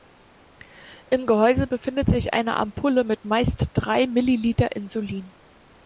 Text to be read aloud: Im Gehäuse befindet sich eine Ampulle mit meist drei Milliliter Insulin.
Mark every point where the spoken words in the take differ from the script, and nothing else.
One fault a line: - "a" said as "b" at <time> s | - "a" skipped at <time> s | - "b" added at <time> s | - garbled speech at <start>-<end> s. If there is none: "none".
none